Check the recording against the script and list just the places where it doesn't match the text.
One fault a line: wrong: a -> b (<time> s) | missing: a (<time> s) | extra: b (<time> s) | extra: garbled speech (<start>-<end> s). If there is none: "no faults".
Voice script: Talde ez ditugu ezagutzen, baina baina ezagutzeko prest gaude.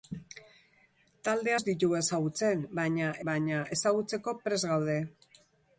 no faults